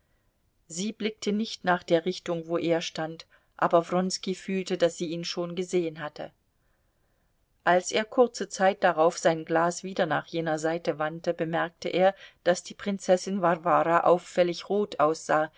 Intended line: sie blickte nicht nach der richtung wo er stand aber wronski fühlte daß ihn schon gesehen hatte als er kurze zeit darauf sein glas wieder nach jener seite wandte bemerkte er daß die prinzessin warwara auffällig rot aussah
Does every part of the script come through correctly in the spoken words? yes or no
no